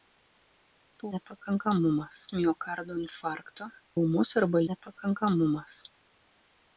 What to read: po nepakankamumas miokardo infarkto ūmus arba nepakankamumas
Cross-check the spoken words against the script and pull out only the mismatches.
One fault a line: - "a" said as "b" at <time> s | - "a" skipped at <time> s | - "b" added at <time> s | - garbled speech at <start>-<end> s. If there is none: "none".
none